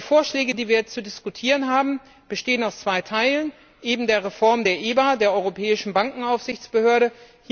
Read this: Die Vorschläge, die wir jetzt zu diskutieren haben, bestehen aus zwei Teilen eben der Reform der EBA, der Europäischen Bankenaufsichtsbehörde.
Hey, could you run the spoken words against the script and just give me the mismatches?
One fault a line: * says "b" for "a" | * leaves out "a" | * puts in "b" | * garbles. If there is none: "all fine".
all fine